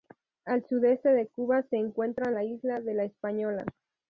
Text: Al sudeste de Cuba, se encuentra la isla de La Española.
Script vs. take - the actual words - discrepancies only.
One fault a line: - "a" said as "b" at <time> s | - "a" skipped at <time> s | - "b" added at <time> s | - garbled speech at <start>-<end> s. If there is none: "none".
none